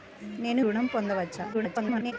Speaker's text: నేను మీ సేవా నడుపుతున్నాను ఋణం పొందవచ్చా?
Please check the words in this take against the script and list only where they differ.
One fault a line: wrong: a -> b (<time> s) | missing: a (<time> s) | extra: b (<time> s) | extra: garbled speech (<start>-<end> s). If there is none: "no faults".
missing: మీ సేవా నడుపుతున్నాను (0.6 s)
extra: garbled speech (1.5-2.1 s)